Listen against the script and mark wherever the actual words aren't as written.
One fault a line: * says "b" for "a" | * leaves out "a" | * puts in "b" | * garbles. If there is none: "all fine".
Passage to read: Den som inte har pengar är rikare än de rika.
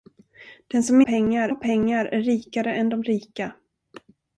* says "pengar" for "inte"